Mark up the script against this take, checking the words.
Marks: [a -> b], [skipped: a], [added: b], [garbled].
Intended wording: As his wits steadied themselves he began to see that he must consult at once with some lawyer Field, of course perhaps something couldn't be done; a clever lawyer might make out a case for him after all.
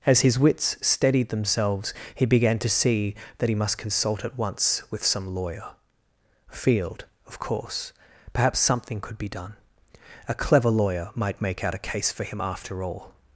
As his wits steadied themselves he began to see that he must consult at once with some lawyer Field, of course perhaps something [couldn't -> could] be done; a clever lawyer might make out a case for him after all.